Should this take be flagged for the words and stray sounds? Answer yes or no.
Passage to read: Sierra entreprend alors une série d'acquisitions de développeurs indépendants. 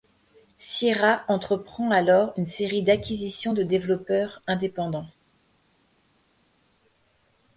no